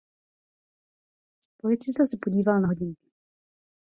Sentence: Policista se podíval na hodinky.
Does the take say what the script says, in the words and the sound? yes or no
yes